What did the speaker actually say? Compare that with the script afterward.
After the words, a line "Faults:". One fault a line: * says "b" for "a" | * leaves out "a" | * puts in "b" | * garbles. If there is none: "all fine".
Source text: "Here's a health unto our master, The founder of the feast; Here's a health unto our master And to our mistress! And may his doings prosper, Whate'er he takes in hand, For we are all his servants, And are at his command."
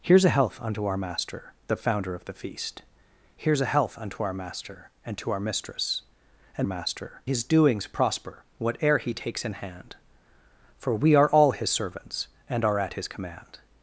"Here's a health unto our master, The founder of the feast; Here's a health unto our master And to our mistress! And master his doings prosper, Whate'er he takes in hand, For we are all his servants, And are at his command."
Faults:
* says "master" for "may"